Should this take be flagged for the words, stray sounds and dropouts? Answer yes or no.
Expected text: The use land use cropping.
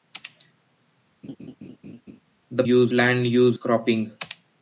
yes